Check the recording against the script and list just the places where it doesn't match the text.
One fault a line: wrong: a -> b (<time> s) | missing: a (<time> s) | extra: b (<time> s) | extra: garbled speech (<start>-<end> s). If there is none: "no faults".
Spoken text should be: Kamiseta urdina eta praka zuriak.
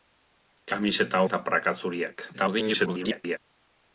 missing: urdina (1.2 s)
extra: garbled speech (2.3-3.4 s)